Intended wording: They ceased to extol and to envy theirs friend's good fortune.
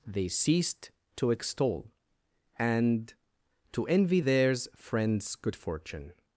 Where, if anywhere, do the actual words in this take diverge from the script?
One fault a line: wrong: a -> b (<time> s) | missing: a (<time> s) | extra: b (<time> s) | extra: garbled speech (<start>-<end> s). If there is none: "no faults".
no faults